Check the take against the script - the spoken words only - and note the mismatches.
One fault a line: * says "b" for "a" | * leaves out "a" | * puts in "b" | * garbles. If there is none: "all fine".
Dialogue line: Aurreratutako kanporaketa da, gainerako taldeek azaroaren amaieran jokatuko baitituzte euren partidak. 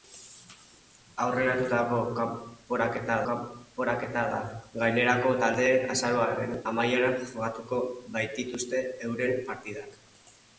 * puts in "kanporaketa"